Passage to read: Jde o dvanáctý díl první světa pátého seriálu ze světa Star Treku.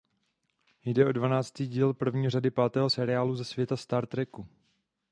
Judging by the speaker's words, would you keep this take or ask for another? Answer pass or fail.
fail